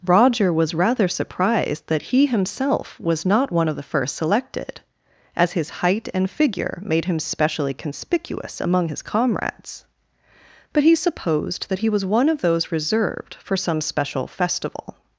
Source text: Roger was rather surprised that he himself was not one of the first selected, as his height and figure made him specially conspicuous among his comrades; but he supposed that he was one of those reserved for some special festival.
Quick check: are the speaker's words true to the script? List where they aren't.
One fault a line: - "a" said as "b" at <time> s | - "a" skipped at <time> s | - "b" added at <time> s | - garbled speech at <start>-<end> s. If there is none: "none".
none